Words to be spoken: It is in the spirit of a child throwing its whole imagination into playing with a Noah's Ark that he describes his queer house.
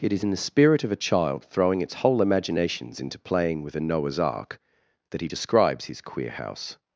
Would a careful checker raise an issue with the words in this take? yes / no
yes